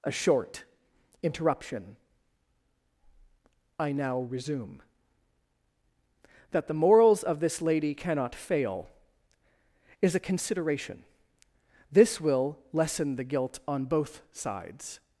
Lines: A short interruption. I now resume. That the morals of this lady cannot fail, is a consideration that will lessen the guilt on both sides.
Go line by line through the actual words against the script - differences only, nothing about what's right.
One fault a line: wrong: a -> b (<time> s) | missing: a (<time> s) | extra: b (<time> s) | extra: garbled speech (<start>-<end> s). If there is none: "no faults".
wrong: that -> this (11.9 s)